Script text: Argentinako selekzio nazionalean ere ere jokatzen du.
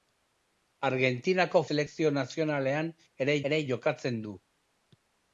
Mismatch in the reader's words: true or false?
false